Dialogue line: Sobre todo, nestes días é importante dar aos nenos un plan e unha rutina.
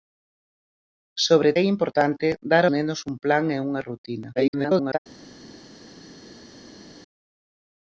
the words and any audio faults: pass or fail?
fail